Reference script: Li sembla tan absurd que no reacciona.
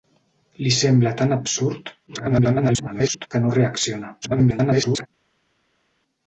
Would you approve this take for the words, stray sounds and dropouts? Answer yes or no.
no